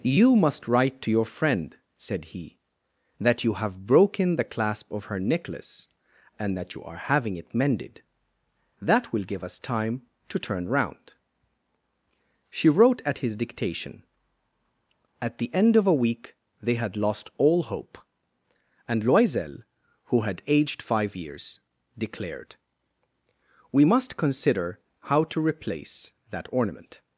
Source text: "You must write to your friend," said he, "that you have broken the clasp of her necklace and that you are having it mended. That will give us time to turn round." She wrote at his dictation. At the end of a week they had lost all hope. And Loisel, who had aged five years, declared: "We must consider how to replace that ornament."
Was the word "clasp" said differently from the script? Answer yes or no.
no